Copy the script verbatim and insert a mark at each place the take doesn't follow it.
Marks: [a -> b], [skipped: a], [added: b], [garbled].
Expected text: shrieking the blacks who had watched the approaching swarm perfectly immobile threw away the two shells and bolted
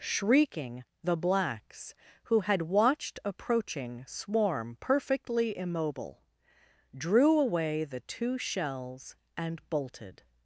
shrieking the blacks who had watched [skipped: the] approaching swarm perfectly immobile [threw -> drew] away the two shells and bolted